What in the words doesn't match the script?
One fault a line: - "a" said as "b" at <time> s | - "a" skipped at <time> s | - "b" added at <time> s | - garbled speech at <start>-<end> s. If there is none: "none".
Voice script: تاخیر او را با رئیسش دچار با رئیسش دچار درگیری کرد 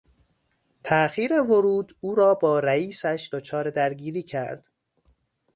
- "ورود" added at 1.4 s
- "با رئیسش دچار" skipped at 3.7 s